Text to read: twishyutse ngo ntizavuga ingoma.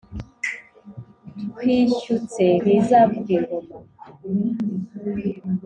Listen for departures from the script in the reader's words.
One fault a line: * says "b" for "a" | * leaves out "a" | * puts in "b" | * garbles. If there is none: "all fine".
* leaves out "ngo"